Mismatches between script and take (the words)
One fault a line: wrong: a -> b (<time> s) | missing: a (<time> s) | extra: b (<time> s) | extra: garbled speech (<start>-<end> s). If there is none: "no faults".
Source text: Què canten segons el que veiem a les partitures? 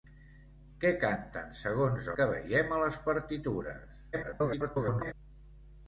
missing: el (2.1 s)
extra: garbled speech (4.1-5.1 s)